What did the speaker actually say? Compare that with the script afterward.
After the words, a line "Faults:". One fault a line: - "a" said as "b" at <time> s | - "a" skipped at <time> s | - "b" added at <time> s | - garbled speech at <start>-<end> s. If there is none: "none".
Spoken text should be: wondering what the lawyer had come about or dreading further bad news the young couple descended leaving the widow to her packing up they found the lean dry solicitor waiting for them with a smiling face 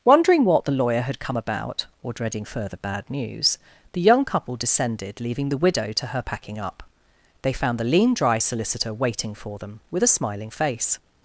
wondering what the lawyer had come about or dreading further bad news the young couple descended leaving the widow to her packing up they found the lean dry solicitor waiting for them with a smiling face
Faults:
none